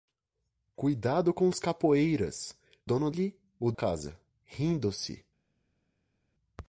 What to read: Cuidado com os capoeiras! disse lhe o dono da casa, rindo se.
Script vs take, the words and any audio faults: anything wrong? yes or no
yes